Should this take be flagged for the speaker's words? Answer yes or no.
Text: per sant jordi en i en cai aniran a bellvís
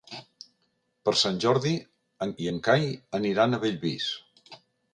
no